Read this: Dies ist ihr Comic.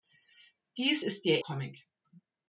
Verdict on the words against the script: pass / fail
pass